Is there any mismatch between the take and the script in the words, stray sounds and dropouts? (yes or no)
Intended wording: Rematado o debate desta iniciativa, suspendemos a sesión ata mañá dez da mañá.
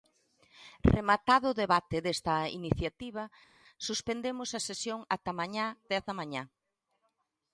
no